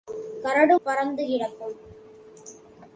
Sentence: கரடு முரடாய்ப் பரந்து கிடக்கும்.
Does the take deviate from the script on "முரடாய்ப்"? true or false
true